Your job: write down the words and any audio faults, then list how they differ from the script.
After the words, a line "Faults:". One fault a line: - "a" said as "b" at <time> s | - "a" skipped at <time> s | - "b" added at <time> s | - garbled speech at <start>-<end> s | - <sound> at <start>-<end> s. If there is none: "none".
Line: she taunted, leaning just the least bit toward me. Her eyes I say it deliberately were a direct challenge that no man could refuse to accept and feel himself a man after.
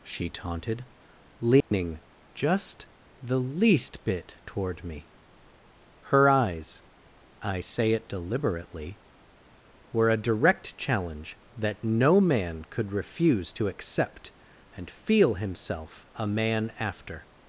she taunted, leaning just the least bit toward me. Her eyes I say it deliberately were a direct challenge that no man could refuse to accept and feel himself a man after.
Faults:
- dropout at 1.6-1.7 s